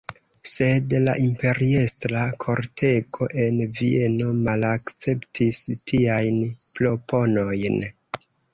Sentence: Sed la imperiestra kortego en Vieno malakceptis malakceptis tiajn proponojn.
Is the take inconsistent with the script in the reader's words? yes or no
yes